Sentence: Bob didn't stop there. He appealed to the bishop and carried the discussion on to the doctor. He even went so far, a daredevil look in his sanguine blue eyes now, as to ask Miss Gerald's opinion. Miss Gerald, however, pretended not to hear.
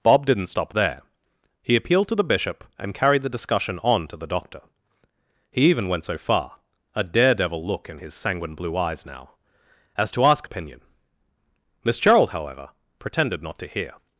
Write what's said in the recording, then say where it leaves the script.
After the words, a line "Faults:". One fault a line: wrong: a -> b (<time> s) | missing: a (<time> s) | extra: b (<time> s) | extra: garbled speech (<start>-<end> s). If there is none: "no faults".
Bob didn't stop there. He appealed to the bishop and carried the discussion on to the doctor. He even went so far, a daredevil look in his sanguine blue eyes now, as to ask Opinion. Miss Gerald, however, pretended not to hear.
Faults:
missing: Miss Gerald's (10.5 s)